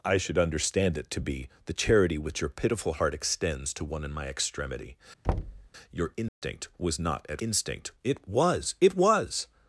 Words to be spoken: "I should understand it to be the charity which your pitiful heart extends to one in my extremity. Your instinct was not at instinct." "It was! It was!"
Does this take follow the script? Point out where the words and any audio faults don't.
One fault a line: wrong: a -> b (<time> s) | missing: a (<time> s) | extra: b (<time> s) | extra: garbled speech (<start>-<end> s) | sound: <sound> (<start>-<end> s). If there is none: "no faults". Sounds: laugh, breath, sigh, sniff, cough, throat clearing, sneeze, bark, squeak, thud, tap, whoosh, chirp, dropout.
sound: thud (5.2-5.7 s)
sound: dropout (6.3-6.4 s)